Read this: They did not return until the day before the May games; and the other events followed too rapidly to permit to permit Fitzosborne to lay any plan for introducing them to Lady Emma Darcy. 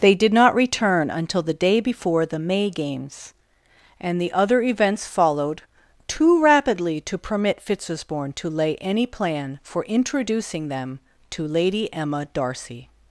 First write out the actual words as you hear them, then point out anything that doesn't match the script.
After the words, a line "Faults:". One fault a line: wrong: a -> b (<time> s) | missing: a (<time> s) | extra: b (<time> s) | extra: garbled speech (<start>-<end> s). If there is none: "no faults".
They did not return until the day before the May games; and the other events followed too rapidly to permit Fitzosborne to lay any plan for introducing them to Lady Emma Darcy.
Faults:
missing: to permit (7.6 s)